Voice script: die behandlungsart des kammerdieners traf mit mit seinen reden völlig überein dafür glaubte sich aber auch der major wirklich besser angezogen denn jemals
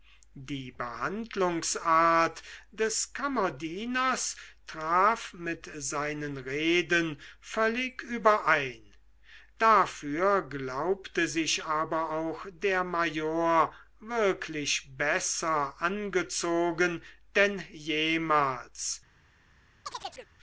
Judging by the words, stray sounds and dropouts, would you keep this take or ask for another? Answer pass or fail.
fail